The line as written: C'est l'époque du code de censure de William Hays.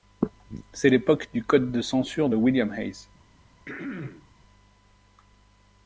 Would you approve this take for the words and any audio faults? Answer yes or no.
no